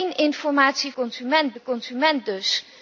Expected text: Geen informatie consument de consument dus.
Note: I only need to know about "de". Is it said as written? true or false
true